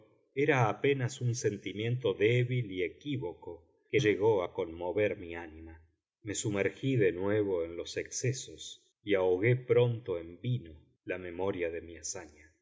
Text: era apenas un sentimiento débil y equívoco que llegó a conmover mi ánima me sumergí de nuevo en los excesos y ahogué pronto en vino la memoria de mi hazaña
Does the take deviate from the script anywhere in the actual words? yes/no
no